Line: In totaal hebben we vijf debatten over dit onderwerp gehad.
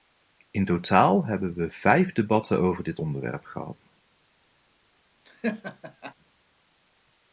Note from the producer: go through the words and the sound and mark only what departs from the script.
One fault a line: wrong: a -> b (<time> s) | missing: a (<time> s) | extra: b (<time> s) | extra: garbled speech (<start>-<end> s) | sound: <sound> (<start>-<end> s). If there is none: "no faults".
sound: laugh (5.2-6.1 s)